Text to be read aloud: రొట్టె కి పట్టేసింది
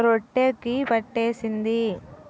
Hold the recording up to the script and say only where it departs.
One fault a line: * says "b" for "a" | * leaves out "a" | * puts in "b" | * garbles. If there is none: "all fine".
all fine